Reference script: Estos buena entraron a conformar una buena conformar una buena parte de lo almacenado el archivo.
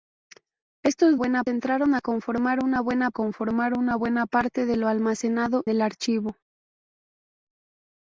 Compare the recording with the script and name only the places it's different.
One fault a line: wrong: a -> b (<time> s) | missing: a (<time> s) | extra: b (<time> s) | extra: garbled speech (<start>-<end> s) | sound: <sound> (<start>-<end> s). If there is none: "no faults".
no faults